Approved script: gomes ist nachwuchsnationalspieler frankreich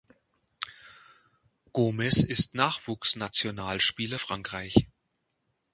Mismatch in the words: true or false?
false